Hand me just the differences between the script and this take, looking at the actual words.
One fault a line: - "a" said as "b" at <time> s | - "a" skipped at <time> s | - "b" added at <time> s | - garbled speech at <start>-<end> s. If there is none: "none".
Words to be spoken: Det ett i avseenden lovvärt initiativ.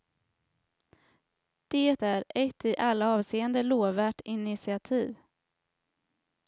- "är" added at 2.0 s
- "alla" added at 2.8 s